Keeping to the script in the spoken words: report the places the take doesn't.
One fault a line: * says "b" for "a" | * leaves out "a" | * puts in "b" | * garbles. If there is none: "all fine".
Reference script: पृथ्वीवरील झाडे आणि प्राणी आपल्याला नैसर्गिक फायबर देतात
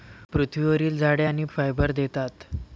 * leaves out "प्राणी आपल्याला नैसर्गिक"